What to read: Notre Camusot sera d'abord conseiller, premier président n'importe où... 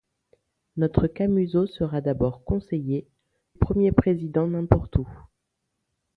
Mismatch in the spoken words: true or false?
false